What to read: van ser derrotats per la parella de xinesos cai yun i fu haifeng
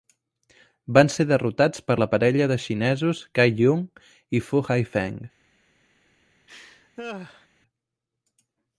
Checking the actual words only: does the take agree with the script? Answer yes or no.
yes